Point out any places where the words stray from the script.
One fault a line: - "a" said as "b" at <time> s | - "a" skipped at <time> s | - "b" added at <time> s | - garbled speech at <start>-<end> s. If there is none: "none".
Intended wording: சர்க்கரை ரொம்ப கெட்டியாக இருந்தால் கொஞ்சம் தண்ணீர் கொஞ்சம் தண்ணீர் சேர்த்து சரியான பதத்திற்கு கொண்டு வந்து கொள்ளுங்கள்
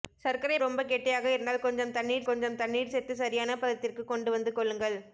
none